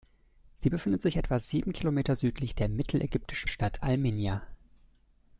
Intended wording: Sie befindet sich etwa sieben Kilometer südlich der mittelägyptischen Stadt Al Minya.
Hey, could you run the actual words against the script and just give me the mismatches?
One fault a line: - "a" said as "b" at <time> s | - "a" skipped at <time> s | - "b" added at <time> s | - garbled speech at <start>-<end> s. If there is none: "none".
none